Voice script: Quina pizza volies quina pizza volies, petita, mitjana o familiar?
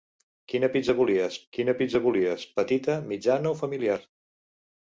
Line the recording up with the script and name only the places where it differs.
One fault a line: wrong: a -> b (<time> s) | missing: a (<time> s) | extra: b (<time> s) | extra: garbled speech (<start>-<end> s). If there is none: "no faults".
no faults